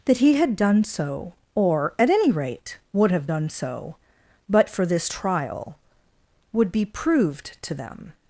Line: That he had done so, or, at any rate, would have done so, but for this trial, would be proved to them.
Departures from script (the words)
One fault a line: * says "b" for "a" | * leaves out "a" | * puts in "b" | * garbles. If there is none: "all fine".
all fine